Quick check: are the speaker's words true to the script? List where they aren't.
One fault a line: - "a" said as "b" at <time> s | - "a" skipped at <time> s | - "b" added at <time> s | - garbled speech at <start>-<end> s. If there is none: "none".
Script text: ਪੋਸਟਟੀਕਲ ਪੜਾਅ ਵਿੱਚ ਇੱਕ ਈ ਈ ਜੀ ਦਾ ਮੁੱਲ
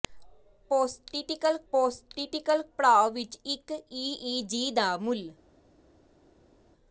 - "ਪੋਸਟਟੀਕਲ" added at 1.7 s